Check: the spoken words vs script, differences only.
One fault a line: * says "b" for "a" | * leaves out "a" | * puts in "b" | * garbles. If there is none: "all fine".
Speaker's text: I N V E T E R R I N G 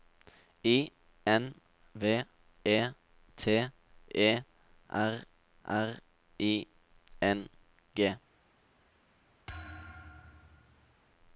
all fine